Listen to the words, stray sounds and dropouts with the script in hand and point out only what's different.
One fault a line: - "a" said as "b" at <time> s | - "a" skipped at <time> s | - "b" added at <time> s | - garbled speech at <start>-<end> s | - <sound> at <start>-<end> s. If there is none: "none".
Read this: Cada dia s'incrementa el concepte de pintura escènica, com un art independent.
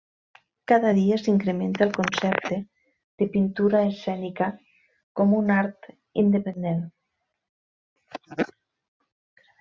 none